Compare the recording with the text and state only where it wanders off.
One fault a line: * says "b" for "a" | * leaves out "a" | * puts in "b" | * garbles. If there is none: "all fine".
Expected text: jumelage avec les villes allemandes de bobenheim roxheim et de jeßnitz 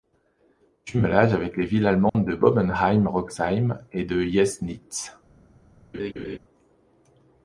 all fine